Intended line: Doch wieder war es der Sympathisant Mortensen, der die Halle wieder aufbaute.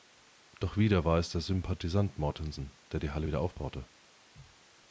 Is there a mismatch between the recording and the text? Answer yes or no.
no